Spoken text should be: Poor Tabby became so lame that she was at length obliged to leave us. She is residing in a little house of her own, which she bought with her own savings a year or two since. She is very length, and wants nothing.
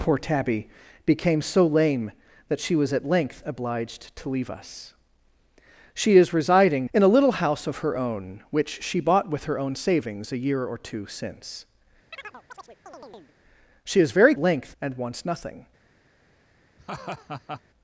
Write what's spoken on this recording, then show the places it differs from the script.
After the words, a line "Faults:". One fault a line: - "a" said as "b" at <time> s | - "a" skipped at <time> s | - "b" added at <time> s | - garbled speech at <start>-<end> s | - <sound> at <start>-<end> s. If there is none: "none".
Poor Tabby became so lame that she was at length obliged to leave us. She is residing in a little house of her own, which she bought with her own savings a year or two since. She is very length, and wants nothing.
Faults:
- chirp at 12.1-13.4 s
- laugh at 16.8-17.6 s